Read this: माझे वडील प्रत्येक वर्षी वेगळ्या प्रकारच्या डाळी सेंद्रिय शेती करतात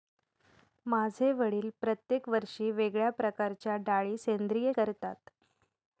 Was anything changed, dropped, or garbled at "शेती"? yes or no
yes